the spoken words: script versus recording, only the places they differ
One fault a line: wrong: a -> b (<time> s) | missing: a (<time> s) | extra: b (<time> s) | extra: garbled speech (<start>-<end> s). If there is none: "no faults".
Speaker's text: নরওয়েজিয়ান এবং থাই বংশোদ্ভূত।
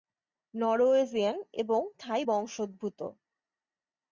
no faults